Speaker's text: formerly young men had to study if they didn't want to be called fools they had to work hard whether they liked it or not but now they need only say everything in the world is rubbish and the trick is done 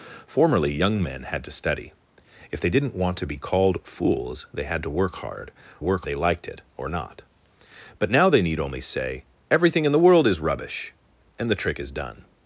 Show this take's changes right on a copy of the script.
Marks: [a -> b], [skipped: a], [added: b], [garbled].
formerly young men had to study if they didn't want to be called fools they had to work hard [whether -> work] they liked it or not but now they need only say everything in the world is rubbish and the trick is done